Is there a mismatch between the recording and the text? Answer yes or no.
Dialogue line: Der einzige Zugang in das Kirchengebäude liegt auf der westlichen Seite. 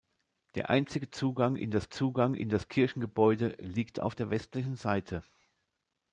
yes